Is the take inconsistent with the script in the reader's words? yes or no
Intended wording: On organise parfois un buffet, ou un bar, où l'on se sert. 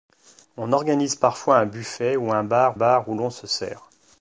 yes